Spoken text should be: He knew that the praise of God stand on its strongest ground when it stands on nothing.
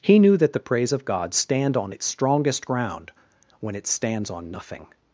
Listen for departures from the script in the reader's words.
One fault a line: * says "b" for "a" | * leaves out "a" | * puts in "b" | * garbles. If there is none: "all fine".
all fine